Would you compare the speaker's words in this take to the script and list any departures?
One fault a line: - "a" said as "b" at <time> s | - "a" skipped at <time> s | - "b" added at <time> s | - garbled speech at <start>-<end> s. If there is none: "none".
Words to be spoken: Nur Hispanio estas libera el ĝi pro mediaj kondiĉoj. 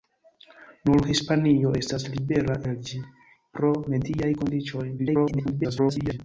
- garbled speech at 5.0-6.2 s